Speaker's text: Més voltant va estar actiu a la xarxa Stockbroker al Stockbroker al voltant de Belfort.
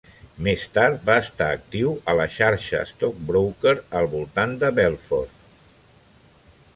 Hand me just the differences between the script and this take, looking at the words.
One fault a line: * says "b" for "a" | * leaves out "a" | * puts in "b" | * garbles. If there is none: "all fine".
* says "tard" for "voltant"
* leaves out "Stockbroker al"